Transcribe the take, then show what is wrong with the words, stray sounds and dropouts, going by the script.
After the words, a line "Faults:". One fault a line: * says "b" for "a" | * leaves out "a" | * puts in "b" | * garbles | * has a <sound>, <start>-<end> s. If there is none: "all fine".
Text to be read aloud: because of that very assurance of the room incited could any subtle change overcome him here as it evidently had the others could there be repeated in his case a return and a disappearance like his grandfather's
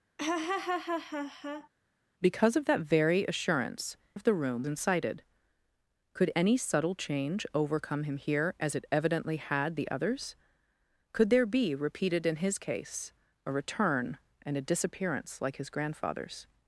because of that very assurance of the room incited could any subtle change overcome him here as it evidently had the others could there be repeated in his case a return and a disappearance like his grandfather's
Faults:
* has a laugh, 0.2-1.7 s